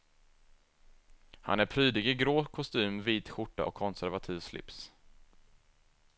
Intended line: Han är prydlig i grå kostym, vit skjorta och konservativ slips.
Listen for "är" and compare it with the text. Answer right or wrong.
right